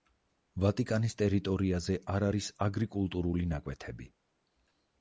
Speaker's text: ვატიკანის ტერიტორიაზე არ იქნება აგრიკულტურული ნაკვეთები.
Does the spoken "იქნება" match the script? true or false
false